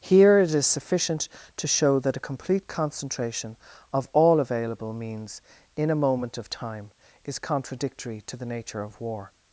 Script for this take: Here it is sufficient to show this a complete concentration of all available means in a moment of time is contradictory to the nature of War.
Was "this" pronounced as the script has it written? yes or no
no